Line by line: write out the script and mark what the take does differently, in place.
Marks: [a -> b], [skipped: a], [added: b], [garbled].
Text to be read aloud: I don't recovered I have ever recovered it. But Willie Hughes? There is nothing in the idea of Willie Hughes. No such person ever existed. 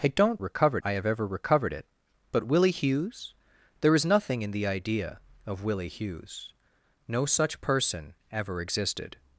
I don't recovered I have ever recovered it. But Willie Hughes? There is nothing in the idea of Willie Hughes. No such person ever existed.